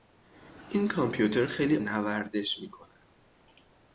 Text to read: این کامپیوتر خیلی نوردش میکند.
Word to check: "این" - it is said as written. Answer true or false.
true